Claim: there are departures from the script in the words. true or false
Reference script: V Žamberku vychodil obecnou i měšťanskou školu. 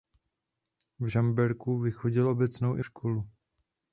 true